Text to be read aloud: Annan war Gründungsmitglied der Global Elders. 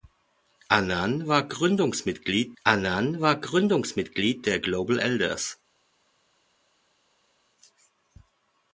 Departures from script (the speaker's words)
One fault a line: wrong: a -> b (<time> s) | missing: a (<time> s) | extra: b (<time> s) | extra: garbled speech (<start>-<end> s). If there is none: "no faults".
extra: annan war Gründungsmitglied (2.6 s)